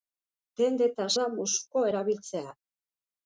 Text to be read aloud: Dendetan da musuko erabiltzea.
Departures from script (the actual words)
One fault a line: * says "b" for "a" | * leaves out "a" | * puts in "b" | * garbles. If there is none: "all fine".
all fine